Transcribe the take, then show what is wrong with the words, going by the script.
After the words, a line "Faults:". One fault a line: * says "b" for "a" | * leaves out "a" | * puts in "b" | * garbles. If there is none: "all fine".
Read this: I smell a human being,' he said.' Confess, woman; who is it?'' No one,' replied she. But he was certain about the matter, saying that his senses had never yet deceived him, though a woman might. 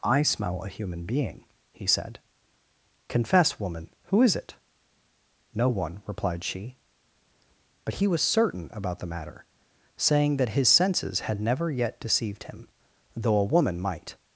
I smell a human being,' he said.' Confess, woman; who is it?'' No one,' replied she. But he was certain about the matter, saying that his senses had never yet deceived him, though a woman might.
Faults:
all fine